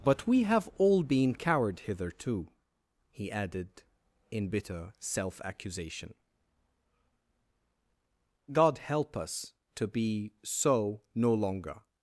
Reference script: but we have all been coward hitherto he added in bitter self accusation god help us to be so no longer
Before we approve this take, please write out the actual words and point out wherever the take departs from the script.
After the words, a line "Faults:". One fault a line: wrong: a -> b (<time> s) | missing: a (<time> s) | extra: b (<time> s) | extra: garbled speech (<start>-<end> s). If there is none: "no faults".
but we have all been coward hitherto he added in bitter self accusation god help us to be so no longer
Faults:
no faults